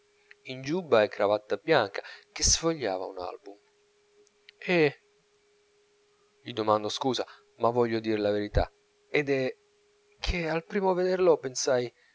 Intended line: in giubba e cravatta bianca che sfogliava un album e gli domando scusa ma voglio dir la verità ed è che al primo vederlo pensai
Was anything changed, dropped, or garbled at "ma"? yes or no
no